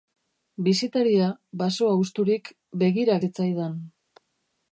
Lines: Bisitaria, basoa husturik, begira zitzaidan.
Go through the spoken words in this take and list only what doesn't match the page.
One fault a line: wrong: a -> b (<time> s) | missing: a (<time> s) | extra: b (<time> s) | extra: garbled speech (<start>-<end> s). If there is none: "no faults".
no faults